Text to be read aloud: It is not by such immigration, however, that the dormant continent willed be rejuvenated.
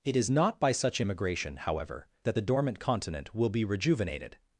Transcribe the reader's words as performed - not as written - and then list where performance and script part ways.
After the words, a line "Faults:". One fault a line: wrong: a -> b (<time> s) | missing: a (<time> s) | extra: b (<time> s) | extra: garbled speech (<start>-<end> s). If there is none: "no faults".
It is not by such immigration, however, that the dormant continent will be rejuvenated.
Faults:
wrong: willed -> will (3.3 s)